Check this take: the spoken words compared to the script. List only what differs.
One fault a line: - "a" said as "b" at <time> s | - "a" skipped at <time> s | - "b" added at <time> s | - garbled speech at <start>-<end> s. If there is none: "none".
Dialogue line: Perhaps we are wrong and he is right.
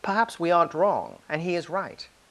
- "are" said as "aren't" at 0.5 s